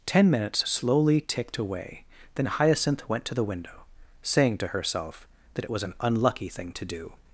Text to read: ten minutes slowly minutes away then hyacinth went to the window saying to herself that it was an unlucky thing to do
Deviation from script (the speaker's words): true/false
true